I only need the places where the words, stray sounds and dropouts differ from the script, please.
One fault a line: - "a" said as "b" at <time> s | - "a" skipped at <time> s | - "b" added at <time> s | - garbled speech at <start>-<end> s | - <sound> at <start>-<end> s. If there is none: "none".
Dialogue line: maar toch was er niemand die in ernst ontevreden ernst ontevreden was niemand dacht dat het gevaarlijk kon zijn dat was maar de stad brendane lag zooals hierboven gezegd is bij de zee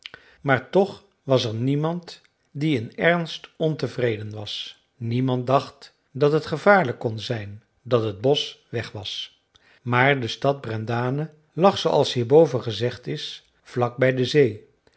- "ernst ontevreden" skipped at 4.3 s
- "het bosch weg" added at 8.0 s
- "vlak" added at 13.6 s